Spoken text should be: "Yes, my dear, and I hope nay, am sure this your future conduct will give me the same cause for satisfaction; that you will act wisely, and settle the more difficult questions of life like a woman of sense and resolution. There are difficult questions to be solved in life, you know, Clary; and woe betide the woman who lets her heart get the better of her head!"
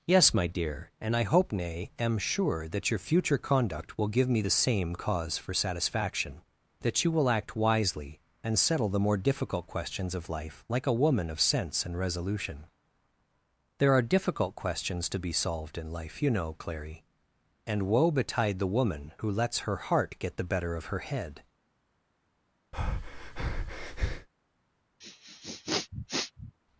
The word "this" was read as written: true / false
false